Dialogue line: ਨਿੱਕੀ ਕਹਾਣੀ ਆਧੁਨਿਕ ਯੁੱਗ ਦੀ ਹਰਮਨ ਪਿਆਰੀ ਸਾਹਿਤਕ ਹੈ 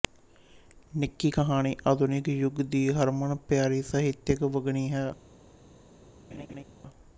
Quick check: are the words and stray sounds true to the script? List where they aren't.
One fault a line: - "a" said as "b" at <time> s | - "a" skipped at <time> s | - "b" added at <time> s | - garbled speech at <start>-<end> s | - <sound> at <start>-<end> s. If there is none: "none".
- "ਵੰਨਗੀ" added at 4.4 s
- laugh at 6.3-6.6 s